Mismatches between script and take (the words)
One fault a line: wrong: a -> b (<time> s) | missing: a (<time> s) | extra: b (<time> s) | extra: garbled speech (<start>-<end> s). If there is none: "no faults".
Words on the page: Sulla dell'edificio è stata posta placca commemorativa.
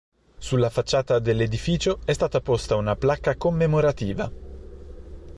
extra: facciata (0.7 s)
extra: una (2.8 s)